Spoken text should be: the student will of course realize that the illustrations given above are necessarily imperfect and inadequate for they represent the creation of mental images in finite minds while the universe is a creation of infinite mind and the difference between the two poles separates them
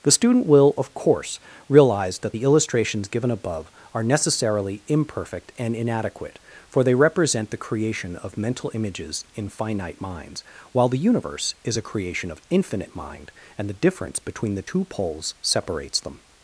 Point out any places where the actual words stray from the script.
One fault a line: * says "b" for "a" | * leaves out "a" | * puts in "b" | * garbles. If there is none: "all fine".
all fine